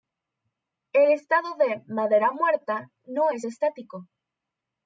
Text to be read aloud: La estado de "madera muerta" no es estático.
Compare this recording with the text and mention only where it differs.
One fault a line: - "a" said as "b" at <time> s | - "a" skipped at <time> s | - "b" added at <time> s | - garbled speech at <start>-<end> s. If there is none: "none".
- "La" said as "El" at 0.9 s